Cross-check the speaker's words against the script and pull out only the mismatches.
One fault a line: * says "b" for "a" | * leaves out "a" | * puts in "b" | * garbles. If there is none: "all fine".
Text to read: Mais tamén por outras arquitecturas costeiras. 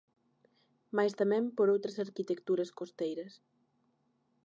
all fine